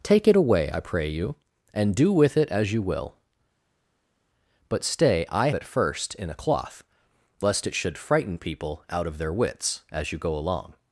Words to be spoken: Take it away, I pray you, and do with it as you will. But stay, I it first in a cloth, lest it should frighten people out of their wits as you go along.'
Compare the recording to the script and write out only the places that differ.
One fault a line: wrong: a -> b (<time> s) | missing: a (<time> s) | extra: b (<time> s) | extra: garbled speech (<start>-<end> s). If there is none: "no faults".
no faults